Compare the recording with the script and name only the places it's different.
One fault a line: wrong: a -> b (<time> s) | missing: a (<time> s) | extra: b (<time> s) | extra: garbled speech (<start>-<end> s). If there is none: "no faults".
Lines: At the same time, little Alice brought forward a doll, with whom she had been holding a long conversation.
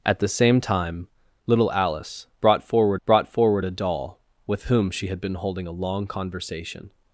extra: brought forward (3.0 s)